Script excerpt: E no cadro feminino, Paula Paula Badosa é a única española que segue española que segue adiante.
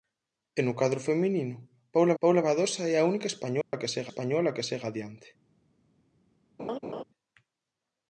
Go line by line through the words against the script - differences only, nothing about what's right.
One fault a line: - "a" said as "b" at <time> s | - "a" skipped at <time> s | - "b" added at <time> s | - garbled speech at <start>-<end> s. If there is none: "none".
none